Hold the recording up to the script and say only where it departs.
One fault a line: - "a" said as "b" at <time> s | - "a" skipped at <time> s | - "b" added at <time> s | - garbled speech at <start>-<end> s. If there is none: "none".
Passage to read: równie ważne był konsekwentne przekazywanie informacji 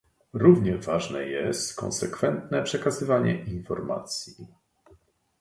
- "był" said as "jest" at 1.2 s